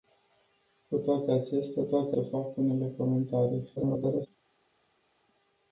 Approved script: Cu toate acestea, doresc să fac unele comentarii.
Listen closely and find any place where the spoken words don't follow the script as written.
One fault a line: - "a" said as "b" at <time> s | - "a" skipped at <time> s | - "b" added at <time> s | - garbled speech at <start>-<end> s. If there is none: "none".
- "doresc" said as "toate" at 1.8 s
- garbled speech at 3.8-4.3 s